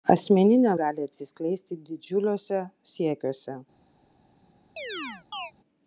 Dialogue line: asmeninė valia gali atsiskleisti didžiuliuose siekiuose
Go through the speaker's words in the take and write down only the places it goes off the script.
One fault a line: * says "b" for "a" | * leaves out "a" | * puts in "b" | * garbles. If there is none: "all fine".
* leaves out "valia"